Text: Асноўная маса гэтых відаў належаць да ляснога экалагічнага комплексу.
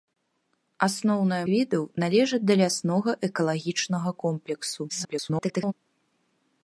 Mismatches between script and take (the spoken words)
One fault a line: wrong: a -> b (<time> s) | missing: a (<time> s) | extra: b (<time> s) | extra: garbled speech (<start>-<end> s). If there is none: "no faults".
missing: маса гэтых (1.4 s)
extra: garbled speech (4.9-5.7 s)